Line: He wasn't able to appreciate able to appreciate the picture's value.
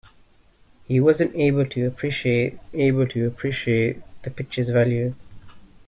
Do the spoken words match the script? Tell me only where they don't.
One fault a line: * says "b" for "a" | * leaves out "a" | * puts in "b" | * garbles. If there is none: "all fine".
all fine